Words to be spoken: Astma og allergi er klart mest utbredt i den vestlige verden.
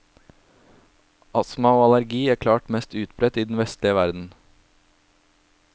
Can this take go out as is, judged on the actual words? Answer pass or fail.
pass